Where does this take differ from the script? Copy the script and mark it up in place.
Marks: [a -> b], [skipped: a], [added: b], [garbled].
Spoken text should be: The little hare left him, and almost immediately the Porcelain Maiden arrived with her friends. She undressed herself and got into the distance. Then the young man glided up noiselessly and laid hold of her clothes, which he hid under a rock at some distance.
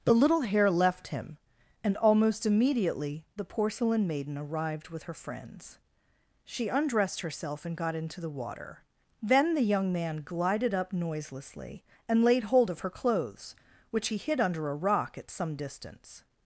The little hare left him, and almost immediately the Porcelain Maiden arrived with her friends. She undressed herself and got into the [distance. -> water] Then the young man glided up noiselessly and laid hold of her clothes, which he hid under a rock at some distance.